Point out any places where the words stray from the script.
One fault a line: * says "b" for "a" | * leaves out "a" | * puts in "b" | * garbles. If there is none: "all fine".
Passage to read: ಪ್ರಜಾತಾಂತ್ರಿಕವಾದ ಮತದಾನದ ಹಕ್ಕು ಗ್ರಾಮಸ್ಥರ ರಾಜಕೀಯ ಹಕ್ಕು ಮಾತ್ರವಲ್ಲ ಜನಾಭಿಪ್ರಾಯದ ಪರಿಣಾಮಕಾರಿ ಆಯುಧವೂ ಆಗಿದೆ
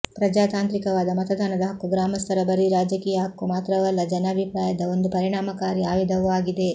* puts in "ಬರೀ"
* puts in "ಒಂದು"